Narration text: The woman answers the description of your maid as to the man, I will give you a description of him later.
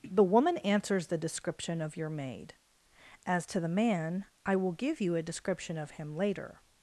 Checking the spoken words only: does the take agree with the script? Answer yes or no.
yes